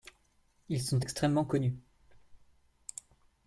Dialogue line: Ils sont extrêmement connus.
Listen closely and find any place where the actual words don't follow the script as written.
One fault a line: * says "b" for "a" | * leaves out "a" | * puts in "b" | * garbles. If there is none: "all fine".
all fine